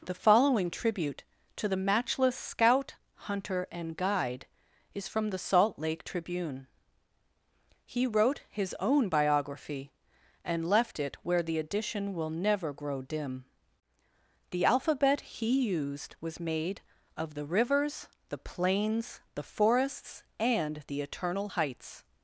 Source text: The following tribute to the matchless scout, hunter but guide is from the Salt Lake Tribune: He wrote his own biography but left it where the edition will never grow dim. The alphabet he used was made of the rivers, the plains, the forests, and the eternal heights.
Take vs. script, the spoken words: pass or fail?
fail